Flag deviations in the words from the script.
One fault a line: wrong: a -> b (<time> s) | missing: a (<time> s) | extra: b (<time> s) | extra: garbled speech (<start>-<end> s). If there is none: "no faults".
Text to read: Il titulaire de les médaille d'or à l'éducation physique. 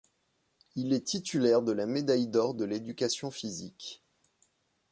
extra: est (0.9 s)
wrong: les -> la (1.7 s)
wrong: à -> de (2.5 s)